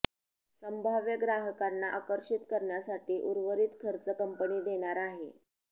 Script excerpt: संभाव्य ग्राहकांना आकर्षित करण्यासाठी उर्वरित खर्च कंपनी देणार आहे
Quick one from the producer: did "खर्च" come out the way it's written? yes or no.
yes